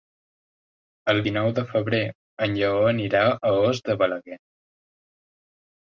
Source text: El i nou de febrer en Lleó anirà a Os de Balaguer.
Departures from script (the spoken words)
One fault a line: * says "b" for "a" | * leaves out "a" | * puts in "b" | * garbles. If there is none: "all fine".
all fine